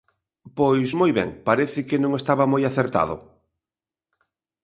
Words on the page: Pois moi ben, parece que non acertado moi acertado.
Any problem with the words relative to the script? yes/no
yes